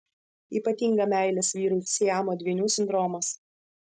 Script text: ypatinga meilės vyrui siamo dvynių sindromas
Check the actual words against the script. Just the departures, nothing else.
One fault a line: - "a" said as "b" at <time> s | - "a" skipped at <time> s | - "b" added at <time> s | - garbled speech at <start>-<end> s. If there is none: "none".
none